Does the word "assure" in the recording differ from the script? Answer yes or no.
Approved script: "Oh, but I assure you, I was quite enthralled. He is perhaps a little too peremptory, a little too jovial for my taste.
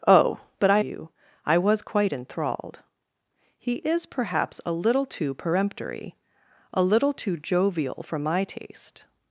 yes